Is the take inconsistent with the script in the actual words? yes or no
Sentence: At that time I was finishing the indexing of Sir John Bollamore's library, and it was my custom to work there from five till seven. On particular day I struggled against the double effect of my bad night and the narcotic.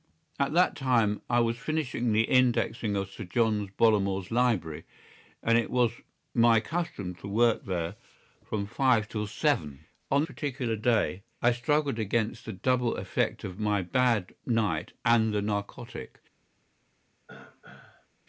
no